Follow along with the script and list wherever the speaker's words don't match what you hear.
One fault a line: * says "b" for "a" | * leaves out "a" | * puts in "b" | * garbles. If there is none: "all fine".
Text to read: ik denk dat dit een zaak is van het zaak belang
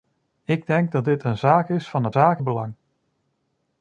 all fine